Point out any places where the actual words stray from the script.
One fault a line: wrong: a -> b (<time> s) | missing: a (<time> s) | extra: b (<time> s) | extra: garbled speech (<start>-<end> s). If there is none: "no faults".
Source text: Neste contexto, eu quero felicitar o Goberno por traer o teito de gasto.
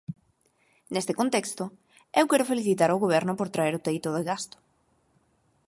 no faults